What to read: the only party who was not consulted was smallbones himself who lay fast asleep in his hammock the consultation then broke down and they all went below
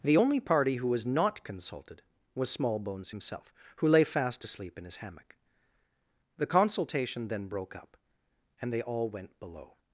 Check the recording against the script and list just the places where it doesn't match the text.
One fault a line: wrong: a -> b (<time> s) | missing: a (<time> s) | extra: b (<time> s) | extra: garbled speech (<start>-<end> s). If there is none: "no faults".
wrong: down -> up (7.8 s)